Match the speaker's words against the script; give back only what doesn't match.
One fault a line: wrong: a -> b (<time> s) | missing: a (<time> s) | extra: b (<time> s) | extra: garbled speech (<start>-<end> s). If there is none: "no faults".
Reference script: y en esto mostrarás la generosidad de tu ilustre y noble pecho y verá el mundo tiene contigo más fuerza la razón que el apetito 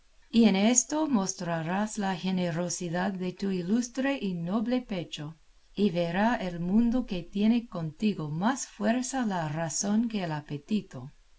extra: que (7.0 s)